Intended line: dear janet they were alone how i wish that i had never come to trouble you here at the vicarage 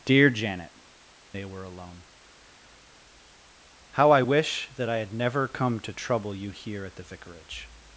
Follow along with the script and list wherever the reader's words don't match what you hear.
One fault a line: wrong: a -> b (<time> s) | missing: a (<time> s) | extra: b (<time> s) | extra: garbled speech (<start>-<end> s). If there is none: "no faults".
no faults